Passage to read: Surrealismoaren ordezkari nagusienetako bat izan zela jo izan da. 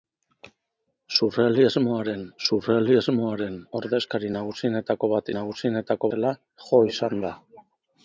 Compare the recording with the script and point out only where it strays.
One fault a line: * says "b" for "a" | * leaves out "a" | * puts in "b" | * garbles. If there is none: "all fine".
* puts in "surrealismoaren"
* says "nagusienetako" for "izan"